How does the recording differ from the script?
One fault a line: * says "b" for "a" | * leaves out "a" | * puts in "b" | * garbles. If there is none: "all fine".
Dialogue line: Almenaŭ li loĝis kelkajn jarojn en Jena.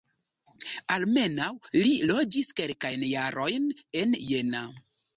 all fine